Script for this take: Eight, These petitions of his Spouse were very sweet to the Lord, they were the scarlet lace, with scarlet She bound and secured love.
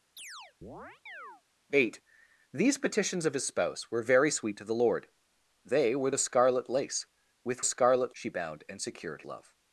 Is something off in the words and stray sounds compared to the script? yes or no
yes